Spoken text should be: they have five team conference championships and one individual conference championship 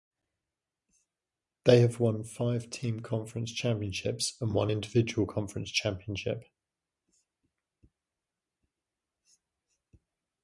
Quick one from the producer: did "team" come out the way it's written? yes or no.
yes